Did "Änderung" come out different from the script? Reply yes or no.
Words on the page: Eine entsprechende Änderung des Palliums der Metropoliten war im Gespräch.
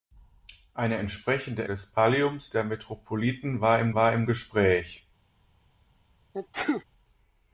yes